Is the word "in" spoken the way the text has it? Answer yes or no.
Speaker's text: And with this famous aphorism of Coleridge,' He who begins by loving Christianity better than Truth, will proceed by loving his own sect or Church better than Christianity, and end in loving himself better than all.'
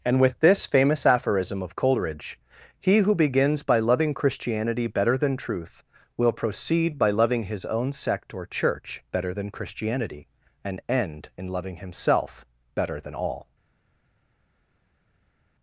yes